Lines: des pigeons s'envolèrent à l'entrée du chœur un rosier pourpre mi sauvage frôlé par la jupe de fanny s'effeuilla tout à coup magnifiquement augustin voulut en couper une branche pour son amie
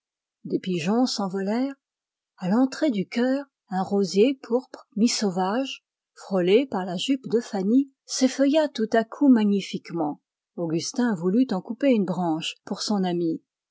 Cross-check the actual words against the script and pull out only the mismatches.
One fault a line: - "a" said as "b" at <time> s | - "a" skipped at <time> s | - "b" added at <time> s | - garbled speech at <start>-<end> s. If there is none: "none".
none